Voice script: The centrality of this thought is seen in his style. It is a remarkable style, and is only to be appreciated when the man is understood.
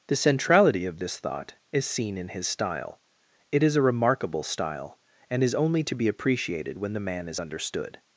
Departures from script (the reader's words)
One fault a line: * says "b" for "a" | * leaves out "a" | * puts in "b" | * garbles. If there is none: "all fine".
all fine